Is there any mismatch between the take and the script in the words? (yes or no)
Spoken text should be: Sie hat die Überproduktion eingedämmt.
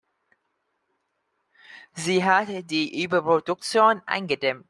no